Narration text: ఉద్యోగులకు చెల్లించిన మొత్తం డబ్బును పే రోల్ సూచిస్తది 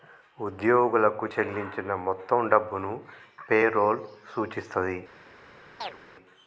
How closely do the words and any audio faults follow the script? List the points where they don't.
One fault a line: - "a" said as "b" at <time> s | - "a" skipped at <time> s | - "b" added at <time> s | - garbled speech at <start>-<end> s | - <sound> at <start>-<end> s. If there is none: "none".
- chirp at 5.8-6.0 s